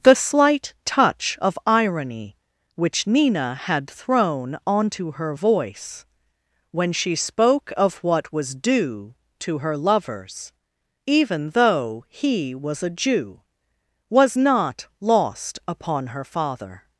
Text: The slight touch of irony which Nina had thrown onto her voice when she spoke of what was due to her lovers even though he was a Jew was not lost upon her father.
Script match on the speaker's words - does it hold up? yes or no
yes